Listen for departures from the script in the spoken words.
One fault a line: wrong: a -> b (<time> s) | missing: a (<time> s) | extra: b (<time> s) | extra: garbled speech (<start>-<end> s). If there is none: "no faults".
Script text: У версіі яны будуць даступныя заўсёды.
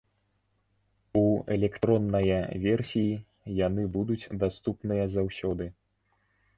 extra: электронная (1.6 s)